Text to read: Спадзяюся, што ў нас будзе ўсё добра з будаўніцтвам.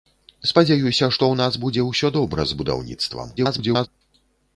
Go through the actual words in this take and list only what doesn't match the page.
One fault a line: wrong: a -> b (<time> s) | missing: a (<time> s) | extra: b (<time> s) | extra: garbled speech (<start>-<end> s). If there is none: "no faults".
extra: garbled speech (3.4-3.9 s)